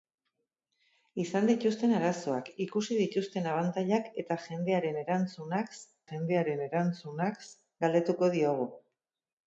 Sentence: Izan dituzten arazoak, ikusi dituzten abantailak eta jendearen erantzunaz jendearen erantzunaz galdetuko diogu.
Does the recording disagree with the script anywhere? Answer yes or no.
no